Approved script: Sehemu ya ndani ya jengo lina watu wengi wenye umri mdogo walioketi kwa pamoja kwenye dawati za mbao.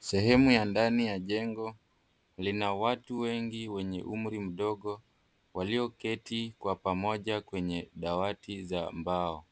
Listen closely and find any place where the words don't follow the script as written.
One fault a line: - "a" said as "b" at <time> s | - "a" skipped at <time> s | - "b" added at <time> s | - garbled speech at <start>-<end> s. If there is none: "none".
none